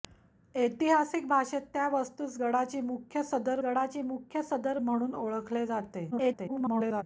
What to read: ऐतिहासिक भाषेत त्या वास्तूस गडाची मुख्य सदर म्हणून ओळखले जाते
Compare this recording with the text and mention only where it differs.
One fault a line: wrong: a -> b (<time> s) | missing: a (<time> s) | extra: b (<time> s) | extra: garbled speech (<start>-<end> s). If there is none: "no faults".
extra: गडाची मुख्य सदर (3.6 s)
extra: garbled speech (6.1-7.0 s)